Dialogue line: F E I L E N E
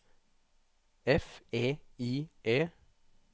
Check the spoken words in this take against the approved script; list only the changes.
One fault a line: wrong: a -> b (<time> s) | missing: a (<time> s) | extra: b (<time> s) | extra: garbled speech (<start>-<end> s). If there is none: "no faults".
missing: L E N (2.3 s)